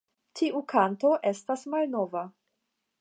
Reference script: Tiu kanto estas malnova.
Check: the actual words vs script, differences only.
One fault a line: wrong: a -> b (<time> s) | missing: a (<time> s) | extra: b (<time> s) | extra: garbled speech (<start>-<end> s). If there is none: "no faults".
no faults